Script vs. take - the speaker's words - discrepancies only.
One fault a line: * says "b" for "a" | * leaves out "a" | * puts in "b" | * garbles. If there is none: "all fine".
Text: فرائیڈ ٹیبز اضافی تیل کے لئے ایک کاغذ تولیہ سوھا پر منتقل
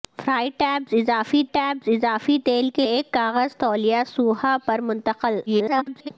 * puts in "ٹیبز اضافی"
* leaves out "لئے"
* garbles